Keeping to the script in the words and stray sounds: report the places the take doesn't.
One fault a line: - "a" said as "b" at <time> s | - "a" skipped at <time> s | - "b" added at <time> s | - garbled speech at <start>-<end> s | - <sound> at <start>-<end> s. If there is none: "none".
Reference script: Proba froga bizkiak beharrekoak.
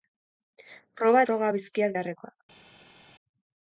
none